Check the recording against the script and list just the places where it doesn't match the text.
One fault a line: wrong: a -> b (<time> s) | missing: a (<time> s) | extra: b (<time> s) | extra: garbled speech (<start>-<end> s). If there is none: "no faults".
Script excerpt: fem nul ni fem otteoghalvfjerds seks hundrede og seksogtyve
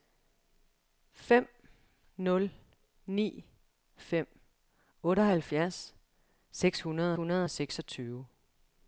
extra: hundrede (7.1 s)